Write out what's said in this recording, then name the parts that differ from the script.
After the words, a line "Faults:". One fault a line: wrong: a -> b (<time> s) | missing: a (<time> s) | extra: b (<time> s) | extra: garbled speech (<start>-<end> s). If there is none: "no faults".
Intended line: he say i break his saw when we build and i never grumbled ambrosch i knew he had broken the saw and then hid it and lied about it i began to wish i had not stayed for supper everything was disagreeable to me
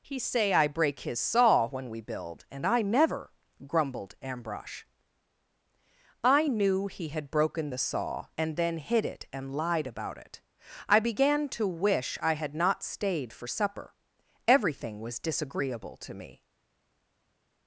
he say i break his saw when we build and i never grumbled ambrosch i knew he had broken the saw and then hid it and lied about it i began to wish i had not stayed for supper everything was disagreeable to me
Faults:
no faults